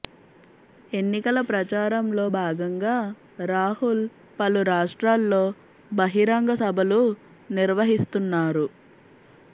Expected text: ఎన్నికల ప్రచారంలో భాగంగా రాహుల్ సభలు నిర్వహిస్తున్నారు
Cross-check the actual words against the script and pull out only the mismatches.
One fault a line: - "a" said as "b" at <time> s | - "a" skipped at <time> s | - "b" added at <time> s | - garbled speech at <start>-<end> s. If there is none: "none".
- "పలు రాష్ట్రాల్లో బహిరంగ" added at 4.4 s